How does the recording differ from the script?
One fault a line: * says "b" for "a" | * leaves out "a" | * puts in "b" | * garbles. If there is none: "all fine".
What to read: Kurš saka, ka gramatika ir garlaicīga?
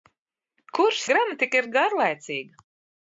* leaves out "saka ka"